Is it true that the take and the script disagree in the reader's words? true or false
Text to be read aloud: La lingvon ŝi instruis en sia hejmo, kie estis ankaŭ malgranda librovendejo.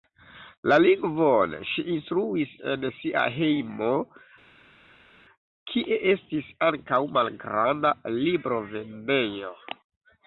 false